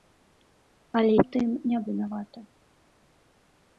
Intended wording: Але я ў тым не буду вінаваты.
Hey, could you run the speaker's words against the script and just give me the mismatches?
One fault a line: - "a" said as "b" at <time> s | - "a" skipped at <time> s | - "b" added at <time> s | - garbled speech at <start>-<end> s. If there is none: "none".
- "я" skipped at 1.1 s
- "буду" skipped at 1.8 s